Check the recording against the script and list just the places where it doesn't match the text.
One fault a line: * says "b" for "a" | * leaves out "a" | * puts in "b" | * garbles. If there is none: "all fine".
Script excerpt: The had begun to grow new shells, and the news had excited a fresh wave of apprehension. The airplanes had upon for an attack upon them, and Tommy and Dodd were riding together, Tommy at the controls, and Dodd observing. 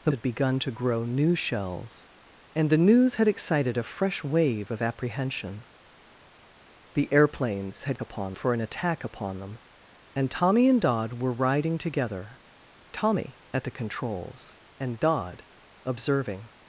all fine